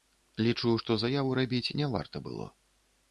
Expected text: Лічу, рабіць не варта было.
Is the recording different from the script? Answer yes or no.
yes